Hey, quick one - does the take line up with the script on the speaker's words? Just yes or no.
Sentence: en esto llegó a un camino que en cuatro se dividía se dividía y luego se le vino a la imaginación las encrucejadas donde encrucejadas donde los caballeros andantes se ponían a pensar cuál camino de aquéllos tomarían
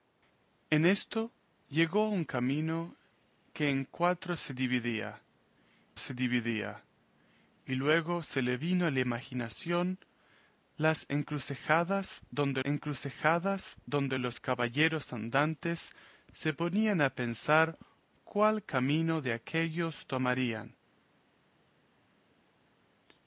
yes